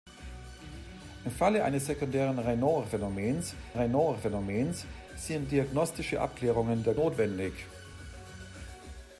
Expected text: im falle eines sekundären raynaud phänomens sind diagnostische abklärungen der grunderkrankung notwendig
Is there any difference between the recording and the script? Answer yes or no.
yes